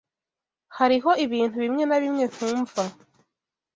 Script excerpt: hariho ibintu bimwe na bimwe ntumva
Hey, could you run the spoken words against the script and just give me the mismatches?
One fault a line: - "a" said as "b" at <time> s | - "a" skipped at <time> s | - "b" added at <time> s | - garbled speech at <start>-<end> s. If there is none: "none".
none